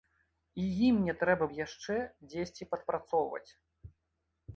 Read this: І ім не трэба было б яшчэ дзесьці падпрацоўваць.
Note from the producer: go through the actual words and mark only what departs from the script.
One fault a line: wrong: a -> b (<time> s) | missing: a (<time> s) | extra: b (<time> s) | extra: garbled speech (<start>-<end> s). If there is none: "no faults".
missing: было (1.4 s)